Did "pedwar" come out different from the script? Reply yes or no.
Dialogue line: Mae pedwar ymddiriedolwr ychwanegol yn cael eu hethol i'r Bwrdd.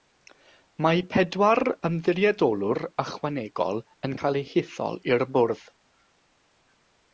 no